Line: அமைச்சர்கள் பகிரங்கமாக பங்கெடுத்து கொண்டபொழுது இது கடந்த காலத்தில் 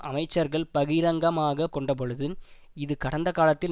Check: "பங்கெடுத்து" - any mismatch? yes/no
yes